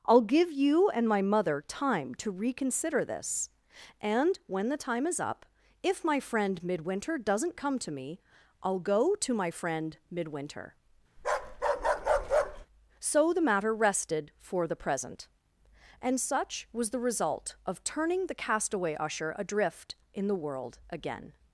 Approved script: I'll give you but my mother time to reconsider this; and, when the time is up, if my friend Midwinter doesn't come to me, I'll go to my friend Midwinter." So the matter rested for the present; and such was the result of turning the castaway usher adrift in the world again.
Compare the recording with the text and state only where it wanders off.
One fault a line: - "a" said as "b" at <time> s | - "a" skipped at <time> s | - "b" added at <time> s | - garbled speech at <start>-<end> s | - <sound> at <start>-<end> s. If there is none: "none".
- "but" said as "and" at 0.9 s
- bark at 11.2-12.7 s